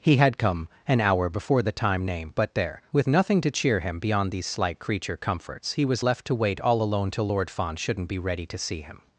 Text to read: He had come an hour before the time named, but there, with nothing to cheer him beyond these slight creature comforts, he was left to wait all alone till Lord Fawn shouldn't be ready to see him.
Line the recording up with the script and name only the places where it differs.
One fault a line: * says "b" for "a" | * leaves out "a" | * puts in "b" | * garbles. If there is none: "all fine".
all fine